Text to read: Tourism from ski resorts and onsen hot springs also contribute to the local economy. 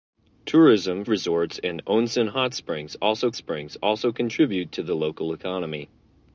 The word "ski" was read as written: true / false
false